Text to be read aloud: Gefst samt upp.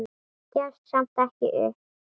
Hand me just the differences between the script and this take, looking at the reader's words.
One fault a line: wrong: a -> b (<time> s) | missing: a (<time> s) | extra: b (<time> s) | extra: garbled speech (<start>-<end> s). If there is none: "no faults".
extra: ekki (1.2 s)